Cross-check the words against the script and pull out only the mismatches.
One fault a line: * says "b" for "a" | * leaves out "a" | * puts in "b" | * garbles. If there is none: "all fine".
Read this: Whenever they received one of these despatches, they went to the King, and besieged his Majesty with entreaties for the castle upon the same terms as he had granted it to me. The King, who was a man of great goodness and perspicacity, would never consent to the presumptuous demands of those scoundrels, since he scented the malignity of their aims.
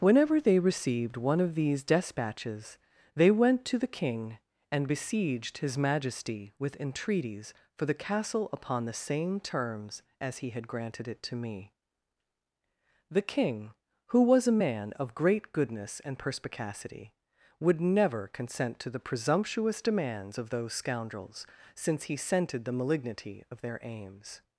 all fine